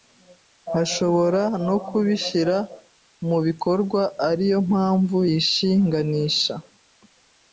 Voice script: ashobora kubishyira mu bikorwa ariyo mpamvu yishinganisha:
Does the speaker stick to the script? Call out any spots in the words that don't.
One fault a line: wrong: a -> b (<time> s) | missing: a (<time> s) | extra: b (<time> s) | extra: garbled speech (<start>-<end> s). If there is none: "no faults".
extra: no (1.7 s)